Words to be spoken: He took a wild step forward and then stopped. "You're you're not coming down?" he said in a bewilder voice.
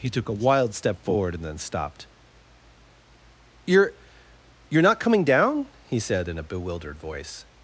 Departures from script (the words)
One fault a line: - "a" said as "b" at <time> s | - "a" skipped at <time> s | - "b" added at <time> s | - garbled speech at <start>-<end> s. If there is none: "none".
- "bewilder" said as "bewildered" at 6.4 s